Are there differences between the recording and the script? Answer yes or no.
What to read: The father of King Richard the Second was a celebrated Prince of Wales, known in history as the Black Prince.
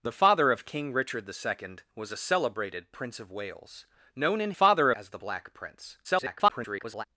yes